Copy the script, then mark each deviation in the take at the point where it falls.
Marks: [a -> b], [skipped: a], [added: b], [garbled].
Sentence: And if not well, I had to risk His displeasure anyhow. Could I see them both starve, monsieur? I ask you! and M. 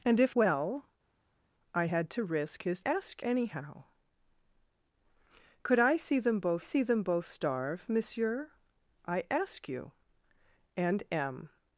And if [skipped: not] well, I had to risk His [displeasure -> ask] anyhow. Could I see them both [added: see them both] starve, monsieur? I ask you! and M.